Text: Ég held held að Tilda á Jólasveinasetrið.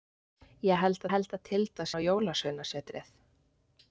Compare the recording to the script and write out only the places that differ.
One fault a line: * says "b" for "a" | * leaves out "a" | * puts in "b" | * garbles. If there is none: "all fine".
all fine